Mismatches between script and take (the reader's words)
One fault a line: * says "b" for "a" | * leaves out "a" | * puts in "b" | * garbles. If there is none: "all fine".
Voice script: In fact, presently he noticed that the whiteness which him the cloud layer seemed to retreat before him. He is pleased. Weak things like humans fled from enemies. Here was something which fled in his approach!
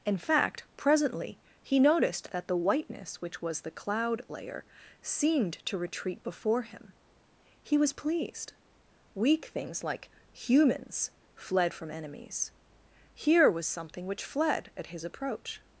* says "was" for "him"
* says "was" for "is"
* says "at" for "in"